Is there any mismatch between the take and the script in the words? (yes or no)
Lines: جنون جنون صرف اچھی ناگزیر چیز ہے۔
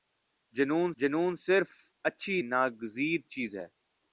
no